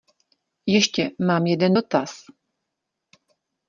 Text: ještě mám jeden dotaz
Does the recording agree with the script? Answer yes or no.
yes